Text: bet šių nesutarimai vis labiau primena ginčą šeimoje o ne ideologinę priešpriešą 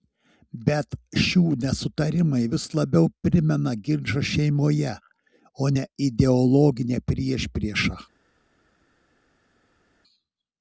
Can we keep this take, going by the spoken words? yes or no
yes